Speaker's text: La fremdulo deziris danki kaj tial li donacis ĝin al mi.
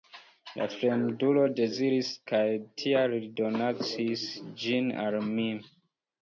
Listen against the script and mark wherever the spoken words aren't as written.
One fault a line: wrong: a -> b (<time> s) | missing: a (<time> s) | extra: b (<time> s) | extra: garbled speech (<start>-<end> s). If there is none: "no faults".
missing: danki (2.1 s)